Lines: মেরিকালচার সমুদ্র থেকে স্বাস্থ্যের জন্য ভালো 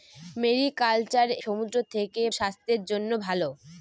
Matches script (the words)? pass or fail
pass